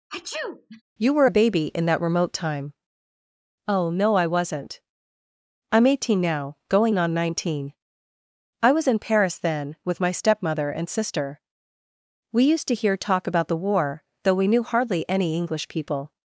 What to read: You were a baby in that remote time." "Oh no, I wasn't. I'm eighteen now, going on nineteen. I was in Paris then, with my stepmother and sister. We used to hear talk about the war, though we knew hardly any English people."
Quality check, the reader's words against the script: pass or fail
pass